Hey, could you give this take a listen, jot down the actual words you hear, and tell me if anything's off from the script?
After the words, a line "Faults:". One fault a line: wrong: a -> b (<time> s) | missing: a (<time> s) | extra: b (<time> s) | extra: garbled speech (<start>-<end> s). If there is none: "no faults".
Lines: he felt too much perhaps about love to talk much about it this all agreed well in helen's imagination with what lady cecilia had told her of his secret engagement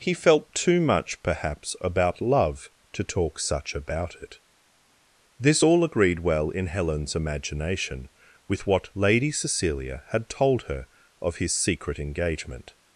he felt too much perhaps about love to talk such about it this all agreed well in helen's imagination with what lady cecilia had told her of his secret engagement
Faults:
wrong: much -> such (3.4 s)